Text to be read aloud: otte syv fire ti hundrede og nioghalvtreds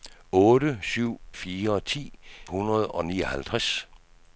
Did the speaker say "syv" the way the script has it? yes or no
yes